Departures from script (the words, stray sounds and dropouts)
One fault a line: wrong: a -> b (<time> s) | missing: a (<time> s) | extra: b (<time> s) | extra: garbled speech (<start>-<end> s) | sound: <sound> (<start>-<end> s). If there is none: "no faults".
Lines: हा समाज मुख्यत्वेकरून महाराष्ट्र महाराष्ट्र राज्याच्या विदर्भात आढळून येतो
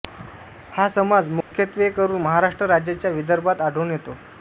sound: dropout (1.4-1.5 s)
missing: महाराष्ट्र (2.7 s)